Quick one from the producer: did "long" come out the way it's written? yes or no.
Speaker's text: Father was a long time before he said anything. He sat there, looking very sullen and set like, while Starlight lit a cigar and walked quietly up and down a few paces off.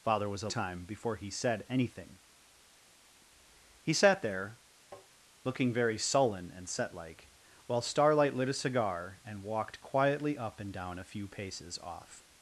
no